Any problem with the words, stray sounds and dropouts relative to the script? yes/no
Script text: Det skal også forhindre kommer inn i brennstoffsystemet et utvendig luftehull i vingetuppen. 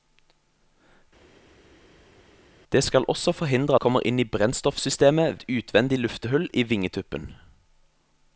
no